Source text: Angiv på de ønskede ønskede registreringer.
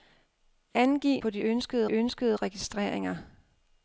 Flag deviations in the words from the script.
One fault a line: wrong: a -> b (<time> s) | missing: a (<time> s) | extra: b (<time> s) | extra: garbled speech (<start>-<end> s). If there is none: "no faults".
no faults